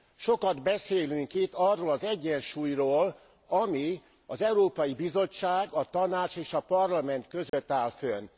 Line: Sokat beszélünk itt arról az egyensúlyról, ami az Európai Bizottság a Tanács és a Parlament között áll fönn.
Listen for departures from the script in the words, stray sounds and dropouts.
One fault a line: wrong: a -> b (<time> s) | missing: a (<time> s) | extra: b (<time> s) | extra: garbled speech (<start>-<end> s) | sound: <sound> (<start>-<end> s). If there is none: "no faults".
sound: dropout (7.5-7.5 s)